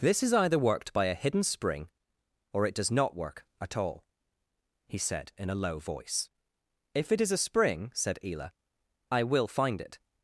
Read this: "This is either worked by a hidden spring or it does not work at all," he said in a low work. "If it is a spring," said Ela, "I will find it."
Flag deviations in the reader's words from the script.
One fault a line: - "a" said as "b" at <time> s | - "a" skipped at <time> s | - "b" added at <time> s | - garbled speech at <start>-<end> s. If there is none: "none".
- "work" said as "voice" at 5.8 s